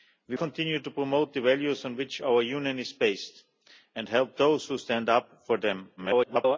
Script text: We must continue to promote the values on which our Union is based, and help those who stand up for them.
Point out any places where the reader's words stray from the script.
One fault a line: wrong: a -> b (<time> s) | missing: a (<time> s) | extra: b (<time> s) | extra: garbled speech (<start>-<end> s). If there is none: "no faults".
missing: must (0.4 s)
extra: garbled speech (6.0-6.6 s)